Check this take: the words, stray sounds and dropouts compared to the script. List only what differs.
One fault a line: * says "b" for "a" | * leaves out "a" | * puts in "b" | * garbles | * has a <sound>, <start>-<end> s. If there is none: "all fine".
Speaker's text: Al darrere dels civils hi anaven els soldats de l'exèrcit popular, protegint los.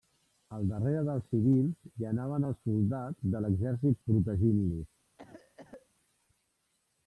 * leaves out "popular"
* has a cough, 5.2-5.9 s